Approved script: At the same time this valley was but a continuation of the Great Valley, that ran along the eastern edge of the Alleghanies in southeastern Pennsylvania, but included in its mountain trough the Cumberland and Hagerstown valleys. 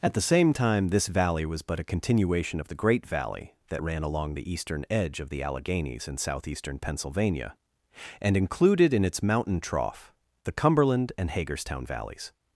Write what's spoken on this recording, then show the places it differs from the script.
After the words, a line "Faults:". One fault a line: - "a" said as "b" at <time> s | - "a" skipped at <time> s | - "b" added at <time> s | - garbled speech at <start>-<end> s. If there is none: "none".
At the same time this valley was but a continuation of the Great Valley, that ran along the eastern edge of the Alleghanies in southeastern Pennsylvania, and included in its mountain trough the Cumberland and Hagerstown valleys.
Faults:
- "but" said as "and" at 8.2 s